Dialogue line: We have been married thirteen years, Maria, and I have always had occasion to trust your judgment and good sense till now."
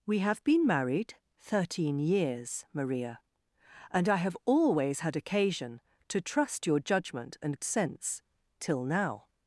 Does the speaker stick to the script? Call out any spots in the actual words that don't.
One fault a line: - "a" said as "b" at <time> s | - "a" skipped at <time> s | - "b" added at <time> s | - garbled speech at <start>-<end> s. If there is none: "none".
- "good" skipped at 7.6 s